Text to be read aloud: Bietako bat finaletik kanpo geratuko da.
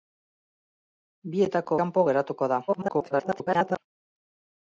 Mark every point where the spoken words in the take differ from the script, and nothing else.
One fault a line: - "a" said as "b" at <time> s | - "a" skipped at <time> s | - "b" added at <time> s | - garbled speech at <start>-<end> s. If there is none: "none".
- "bat finaletik" skipped at 1.8 s
- garbled speech at 2.7-3.8 s